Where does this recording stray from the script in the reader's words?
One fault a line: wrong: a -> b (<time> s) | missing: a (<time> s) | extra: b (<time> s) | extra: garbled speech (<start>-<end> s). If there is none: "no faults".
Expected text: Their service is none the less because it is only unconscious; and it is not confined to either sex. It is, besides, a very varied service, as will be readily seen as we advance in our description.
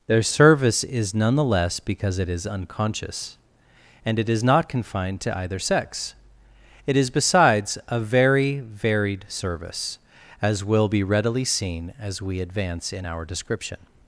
missing: only (2.5 s)